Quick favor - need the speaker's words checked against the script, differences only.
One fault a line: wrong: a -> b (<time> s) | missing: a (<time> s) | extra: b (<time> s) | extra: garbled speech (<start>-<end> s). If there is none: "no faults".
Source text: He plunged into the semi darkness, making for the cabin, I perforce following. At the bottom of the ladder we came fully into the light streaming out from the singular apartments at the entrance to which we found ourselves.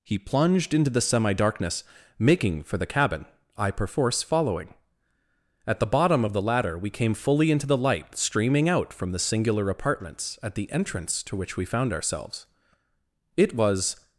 extra: It was (13.4 s)